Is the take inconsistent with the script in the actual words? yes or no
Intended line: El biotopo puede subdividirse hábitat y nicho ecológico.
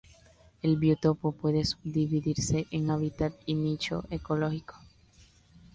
yes